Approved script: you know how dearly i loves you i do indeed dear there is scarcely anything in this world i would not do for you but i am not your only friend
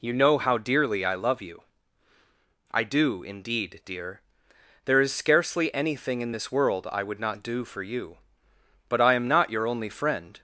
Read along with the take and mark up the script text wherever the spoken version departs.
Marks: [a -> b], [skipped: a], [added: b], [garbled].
you know how dearly i [loves -> love] you i do indeed dear there is scarcely anything in this world i would not do for you but i am not your only friend